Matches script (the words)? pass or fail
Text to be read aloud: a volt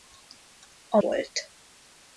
pass